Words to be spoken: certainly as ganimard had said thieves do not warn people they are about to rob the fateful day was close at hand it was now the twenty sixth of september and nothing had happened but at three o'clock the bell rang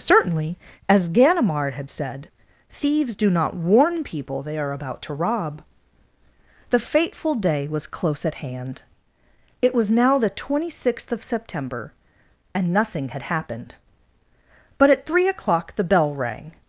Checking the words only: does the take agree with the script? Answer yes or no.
yes